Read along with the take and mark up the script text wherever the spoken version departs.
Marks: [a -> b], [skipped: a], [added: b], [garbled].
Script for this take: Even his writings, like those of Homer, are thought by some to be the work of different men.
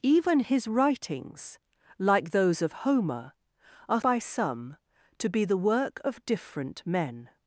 Even his writings, like those of Homer, are [skipped: thought] by some to be the work of different men.